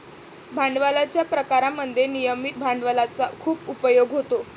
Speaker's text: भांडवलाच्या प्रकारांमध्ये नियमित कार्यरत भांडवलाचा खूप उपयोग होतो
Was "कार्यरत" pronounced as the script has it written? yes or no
no